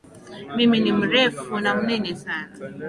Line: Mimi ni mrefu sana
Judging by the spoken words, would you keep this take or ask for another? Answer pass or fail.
fail